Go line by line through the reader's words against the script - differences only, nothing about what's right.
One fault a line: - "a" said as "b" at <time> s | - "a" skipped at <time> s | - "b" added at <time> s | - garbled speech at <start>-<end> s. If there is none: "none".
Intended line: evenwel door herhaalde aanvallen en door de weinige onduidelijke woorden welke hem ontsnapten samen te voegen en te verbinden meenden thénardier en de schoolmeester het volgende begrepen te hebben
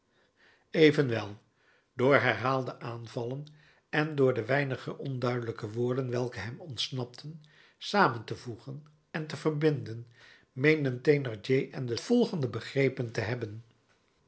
- "schoolmeester het" skipped at 12.0 s